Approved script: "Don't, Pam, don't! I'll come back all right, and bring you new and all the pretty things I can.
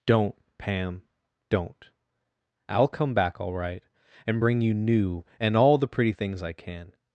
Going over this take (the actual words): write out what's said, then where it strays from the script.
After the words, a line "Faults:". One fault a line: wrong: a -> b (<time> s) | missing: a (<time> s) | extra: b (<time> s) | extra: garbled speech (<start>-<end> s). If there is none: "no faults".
"Don't, Pam, don't! I'll come back all right, and bring you new and all the pretty things I can.
Faults:
no faults